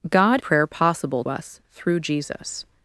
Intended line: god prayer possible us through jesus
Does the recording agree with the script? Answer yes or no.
yes